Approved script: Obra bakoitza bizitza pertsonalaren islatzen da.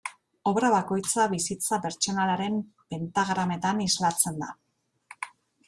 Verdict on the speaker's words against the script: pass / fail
fail